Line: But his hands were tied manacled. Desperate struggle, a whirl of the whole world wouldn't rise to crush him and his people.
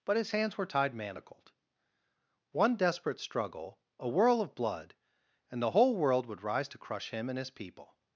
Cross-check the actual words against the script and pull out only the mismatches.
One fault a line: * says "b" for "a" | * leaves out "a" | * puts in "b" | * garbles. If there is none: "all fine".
* puts in "One"
* puts in "blood and"
* says "would" for "wouldn't"